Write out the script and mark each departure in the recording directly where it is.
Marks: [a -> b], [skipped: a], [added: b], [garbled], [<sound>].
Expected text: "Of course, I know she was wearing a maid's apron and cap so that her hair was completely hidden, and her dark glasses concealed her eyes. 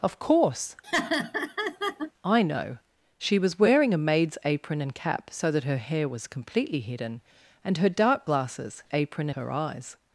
"Of course, [laugh] I know she was wearing a maid's apron and cap so that her hair was completely hidden, and her dark glasses [concealed -> apron] her eyes.